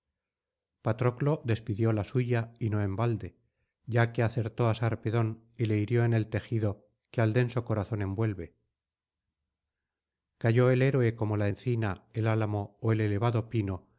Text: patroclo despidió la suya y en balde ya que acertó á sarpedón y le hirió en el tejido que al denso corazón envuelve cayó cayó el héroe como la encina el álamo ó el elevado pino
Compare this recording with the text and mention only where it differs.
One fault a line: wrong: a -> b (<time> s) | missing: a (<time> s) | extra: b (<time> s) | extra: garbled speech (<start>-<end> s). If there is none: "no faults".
extra: no (2.7 s)
missing: cayó (10.7 s)